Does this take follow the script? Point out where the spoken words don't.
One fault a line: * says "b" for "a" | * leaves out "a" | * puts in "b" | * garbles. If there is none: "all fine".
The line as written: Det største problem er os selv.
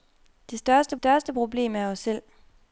* puts in "største"